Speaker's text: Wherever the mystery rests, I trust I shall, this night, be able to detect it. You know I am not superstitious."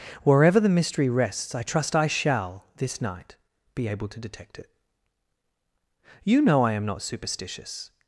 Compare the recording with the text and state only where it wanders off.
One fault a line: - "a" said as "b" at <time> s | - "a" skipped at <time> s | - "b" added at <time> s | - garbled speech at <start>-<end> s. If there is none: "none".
none